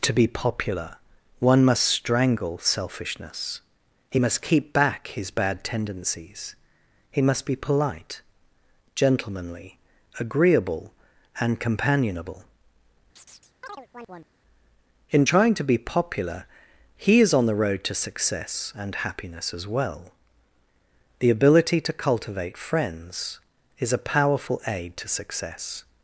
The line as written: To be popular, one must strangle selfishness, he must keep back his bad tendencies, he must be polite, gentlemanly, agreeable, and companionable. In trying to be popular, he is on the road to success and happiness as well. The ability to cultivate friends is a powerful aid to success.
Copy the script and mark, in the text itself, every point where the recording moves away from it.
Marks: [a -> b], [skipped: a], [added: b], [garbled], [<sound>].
To be popular, one must strangle selfishness, he must keep back his bad tendencies, he must be polite, gentlemanly, agreeable, and companionable. [chirp] In trying to be popular, he is on the road to success and happiness as well. The ability to cultivate friends is a powerful aid to success.